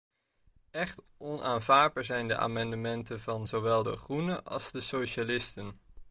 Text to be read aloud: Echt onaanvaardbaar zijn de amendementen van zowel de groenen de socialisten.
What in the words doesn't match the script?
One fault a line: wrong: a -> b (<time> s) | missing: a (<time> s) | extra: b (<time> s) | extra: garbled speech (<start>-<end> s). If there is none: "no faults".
extra: als (4.4 s)